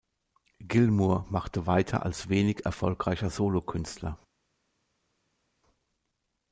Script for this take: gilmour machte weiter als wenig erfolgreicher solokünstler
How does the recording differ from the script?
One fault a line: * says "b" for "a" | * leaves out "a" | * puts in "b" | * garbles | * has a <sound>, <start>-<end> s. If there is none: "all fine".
all fine